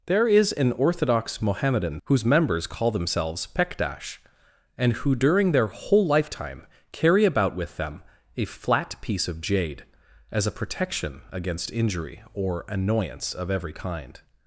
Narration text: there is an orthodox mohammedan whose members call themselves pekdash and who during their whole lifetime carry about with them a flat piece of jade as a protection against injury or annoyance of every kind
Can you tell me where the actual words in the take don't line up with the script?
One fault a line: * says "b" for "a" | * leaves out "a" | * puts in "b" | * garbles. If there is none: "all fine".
all fine